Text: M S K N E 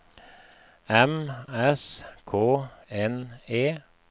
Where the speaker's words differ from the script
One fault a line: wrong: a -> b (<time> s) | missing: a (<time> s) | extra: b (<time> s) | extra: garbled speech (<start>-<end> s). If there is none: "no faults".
no faults